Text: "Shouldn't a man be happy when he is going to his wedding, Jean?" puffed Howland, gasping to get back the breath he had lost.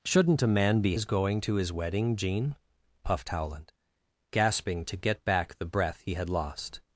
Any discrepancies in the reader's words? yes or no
yes